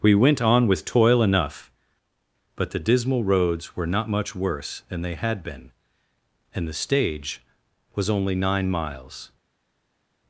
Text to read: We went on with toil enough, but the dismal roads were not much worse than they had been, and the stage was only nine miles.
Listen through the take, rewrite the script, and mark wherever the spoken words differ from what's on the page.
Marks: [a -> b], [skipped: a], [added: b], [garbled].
We went on with toil enough, but the dismal roads were not much worse than they had been, and the stage was only nine miles.